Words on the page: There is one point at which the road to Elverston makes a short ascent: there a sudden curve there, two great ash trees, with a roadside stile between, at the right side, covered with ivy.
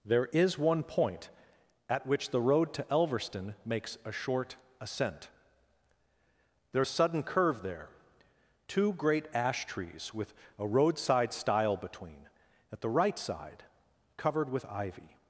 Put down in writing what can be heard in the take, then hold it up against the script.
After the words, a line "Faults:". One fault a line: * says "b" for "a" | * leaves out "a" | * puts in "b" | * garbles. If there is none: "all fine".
There is one point at which the road to Elverston makes a short ascent: there a sudden curve there, two great ash trees, with a roadside stile between, at the right side, covered with ivy.
Faults:
all fine